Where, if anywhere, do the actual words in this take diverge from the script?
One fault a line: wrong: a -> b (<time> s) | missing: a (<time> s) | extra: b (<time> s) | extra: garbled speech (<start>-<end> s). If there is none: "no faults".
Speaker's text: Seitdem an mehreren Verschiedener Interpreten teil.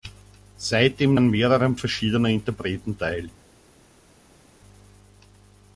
no faults